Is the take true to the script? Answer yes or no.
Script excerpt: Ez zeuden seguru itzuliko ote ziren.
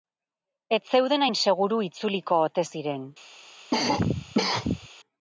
no